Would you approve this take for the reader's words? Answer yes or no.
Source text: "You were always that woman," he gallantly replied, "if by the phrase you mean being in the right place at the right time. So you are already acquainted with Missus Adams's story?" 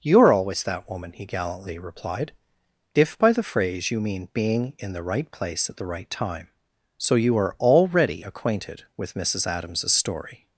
no